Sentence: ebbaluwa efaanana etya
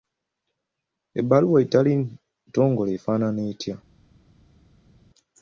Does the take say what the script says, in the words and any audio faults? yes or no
no